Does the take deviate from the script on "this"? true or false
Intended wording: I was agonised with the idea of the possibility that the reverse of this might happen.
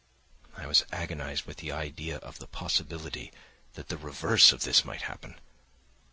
false